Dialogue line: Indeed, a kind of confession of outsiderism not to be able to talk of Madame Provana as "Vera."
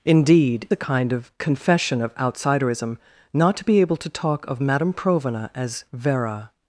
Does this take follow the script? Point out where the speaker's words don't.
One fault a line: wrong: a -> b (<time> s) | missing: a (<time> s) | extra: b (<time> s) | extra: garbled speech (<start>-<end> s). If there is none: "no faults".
no faults